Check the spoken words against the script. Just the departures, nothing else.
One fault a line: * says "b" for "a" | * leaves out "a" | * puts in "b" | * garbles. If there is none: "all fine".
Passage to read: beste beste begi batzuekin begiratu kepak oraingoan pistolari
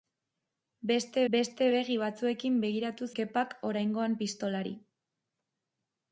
all fine